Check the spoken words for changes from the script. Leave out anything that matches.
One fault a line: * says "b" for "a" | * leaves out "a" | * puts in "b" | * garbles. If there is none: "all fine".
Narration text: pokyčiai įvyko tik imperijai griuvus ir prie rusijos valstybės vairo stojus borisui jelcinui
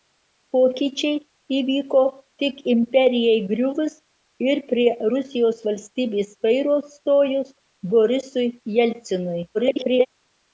* garbles